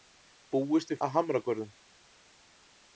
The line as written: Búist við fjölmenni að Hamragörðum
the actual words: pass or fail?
fail